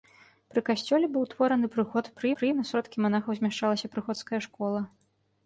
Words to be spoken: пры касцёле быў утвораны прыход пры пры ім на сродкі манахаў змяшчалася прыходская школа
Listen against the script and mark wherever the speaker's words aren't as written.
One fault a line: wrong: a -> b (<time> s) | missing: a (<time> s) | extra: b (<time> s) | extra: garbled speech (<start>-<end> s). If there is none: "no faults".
no faults